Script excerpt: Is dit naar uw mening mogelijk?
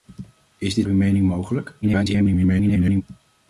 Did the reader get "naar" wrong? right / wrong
wrong